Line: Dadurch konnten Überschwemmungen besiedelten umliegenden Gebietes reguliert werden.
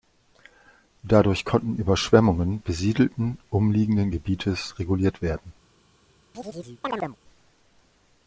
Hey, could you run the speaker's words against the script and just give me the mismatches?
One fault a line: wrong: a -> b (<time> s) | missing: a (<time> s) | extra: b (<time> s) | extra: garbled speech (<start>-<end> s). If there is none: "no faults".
no faults